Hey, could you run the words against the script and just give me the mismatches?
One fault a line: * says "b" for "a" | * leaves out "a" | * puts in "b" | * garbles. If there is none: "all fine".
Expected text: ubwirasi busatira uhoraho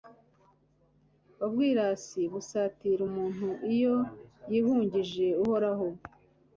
* puts in "umuntu iyo yihungije"